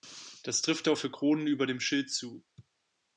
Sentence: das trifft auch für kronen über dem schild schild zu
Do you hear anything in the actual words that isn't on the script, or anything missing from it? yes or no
yes